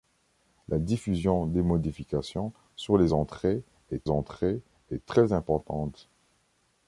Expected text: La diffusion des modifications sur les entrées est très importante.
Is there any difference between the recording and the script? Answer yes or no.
yes